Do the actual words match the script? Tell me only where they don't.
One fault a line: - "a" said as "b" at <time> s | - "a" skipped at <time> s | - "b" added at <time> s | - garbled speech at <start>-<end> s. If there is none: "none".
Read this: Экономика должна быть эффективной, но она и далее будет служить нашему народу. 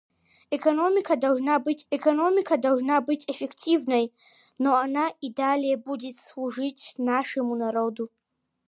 - "экономика должна быть" added at 1.9 s